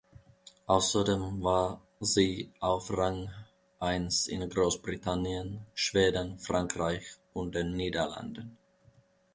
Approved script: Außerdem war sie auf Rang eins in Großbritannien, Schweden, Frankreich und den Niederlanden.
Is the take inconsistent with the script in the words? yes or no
no